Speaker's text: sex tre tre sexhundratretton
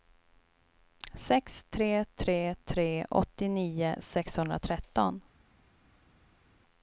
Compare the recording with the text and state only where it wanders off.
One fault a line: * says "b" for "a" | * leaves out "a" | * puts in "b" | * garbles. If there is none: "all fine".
* puts in "tre åttionio"